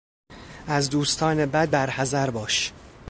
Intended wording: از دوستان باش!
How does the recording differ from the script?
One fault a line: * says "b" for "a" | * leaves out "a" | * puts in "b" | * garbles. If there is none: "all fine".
* puts in "بد برحذر"